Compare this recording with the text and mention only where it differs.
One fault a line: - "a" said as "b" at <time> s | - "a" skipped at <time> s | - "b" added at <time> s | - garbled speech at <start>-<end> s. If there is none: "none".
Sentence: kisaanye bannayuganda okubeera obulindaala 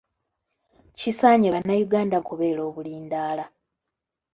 none